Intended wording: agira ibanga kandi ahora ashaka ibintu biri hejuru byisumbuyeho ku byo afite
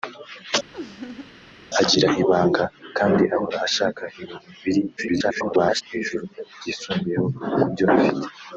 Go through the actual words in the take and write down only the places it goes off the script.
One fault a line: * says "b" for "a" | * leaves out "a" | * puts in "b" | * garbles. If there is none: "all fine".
* garbles